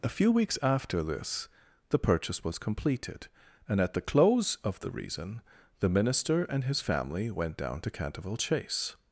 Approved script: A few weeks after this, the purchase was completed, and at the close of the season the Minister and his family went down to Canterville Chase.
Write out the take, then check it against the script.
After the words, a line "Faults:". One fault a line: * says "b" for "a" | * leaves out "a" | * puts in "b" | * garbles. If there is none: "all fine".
A few weeks after this, the purchase was completed, and at the close of the reason the Minister and his family went down to Canterville Chase.
Faults:
* says "reason" for "season"